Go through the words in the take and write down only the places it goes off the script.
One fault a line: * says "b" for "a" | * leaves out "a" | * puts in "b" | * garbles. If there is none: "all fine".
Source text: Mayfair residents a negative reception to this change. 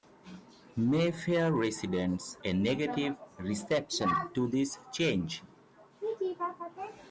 all fine